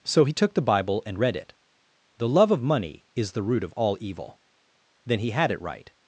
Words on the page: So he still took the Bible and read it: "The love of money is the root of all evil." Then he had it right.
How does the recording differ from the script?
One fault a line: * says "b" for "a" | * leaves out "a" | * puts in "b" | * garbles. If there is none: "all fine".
* leaves out "still"